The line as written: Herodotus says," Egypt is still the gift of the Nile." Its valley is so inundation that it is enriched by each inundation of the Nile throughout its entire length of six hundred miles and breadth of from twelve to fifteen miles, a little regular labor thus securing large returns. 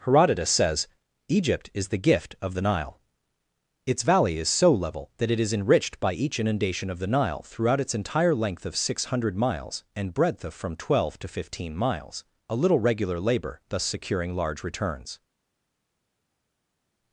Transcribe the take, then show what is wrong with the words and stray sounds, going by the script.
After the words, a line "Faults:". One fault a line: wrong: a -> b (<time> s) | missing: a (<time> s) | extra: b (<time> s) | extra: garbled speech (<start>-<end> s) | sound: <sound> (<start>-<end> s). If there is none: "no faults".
Herodotus says," Egypt is the gift of the Nile." Its valley is so level that it is enriched by each inundation of the Nile throughout its entire length of six hundred miles and breadth of from twelve to fifteen miles, a little regular labor thus securing large returns.
Faults:
missing: still (1.9 s)
wrong: inundation -> level (4.7 s)